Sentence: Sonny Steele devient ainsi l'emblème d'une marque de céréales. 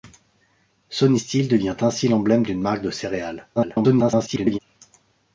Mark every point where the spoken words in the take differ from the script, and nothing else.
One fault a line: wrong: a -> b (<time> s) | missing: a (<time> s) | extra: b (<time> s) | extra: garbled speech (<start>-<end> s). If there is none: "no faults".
extra: garbled speech (3.6-4.6 s)